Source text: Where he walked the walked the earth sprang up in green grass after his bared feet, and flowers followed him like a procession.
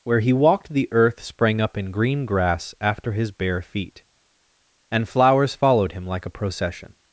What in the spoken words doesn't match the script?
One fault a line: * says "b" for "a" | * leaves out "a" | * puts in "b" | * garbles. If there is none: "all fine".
* leaves out "walked the"
* says "bare" for "bared"